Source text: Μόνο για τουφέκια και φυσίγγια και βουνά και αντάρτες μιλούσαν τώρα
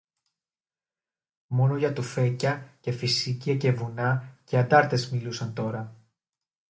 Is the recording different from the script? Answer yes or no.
no